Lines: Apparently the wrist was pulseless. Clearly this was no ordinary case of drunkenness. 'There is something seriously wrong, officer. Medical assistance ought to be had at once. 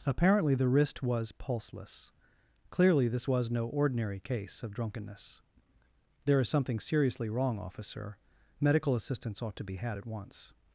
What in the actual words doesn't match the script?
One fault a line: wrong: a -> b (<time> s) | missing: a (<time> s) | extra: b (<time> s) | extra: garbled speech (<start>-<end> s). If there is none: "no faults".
no faults